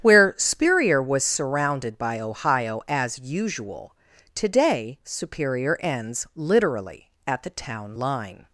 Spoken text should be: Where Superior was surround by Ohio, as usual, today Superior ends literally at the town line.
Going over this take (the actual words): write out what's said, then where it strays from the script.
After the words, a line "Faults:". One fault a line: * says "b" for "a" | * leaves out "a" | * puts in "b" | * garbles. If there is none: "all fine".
Where Superior was surrounded by Ohio, as usual, today Superior ends literally at the town line.
Faults:
* says "surrounded" for "surround"